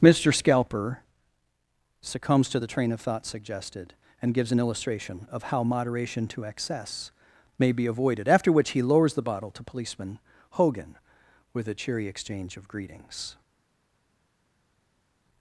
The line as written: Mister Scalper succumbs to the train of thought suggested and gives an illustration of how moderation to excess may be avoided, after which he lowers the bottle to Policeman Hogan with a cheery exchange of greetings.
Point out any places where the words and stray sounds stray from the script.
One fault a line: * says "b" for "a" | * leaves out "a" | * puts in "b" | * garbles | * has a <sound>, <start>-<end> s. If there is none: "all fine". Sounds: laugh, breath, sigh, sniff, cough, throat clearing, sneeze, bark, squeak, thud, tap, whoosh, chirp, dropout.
all fine